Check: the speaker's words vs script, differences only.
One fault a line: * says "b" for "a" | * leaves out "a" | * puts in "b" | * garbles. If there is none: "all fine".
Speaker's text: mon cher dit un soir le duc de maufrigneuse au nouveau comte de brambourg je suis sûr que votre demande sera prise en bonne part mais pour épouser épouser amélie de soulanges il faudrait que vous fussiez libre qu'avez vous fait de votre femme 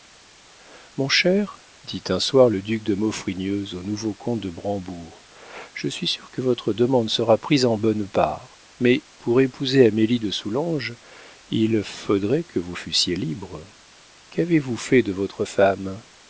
* leaves out "épouser"